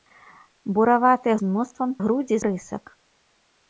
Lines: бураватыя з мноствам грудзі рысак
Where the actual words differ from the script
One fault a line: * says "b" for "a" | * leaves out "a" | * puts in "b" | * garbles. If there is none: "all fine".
all fine